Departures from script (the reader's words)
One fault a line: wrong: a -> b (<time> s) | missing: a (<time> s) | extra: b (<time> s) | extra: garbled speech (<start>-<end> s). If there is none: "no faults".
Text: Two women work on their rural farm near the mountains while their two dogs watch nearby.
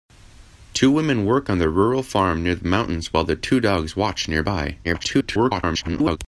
extra: garbled speech (4.8-6.2 s)